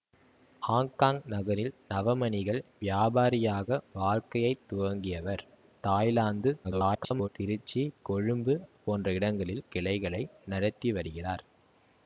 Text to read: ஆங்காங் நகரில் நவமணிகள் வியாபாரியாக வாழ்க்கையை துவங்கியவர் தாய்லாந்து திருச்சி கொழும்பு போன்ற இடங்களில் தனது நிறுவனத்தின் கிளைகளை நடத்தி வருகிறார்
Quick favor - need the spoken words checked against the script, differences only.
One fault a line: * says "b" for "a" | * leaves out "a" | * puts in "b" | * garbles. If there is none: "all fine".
* garbles
* leaves out "தனது நிறுவனத்தின்"